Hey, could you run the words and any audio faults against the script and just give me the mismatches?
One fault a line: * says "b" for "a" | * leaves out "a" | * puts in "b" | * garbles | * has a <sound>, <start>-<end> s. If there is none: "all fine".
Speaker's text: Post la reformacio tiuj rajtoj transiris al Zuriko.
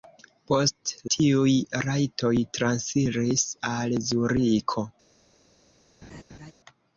* leaves out "la reformacio"
* has a laugh, 6.0-6.5 s